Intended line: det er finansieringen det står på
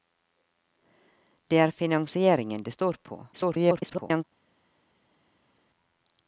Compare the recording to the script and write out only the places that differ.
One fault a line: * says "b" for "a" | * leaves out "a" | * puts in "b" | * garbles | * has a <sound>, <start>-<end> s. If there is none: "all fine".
* garbles